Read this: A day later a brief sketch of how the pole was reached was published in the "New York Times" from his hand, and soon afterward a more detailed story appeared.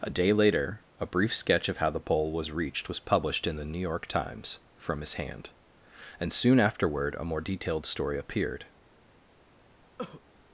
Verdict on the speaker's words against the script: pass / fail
pass